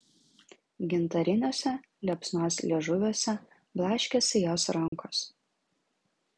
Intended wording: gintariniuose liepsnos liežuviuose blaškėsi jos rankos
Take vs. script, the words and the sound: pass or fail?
fail